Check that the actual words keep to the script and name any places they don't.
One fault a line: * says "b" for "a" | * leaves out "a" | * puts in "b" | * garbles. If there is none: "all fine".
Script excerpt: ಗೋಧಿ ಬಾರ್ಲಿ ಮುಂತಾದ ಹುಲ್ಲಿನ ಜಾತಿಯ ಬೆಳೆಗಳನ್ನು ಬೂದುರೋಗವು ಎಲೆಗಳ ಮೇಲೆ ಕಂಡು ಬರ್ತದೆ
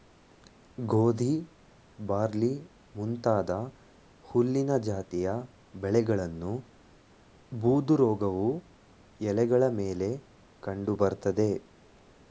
all fine